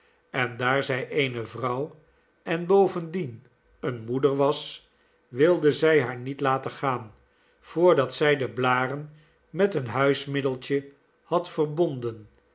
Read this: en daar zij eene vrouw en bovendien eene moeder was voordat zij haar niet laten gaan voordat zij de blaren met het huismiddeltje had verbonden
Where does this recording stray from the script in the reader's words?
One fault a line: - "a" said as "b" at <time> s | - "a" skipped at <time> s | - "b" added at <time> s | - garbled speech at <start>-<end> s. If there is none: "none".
- "voordat" said as "wilde" at 5.3 s
- "het" said as "een" at 9.7 s